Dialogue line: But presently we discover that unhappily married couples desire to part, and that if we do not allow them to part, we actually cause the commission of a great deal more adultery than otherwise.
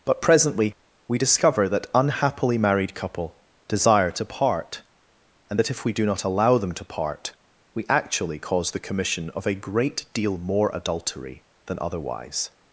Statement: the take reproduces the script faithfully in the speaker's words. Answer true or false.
false